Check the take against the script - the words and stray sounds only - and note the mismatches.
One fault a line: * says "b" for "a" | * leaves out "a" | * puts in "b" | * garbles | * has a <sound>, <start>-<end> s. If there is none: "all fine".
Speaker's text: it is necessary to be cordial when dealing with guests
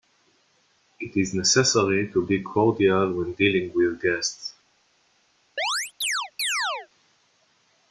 * has a chirp, 5.6-6.9 s